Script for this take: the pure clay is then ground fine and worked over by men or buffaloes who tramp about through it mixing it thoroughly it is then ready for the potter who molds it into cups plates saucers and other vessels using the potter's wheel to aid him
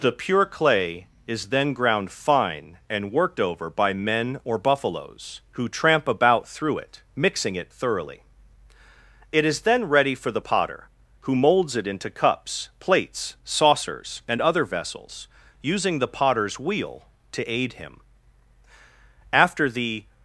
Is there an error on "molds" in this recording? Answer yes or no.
no